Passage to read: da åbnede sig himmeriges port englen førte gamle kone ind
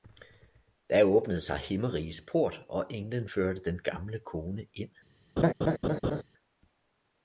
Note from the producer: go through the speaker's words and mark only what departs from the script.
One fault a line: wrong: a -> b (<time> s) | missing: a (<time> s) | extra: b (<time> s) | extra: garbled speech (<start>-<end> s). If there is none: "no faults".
extra: og (2.7 s)
extra: den (3.6 s)